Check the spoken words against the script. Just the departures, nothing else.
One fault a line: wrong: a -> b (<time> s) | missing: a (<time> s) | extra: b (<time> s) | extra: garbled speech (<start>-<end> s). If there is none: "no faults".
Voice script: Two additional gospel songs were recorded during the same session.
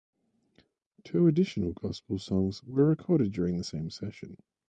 no faults